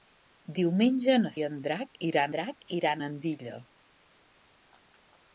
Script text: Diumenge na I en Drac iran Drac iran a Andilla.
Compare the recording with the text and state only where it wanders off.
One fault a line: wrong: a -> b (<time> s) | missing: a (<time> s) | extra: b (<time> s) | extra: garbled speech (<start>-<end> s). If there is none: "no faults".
no faults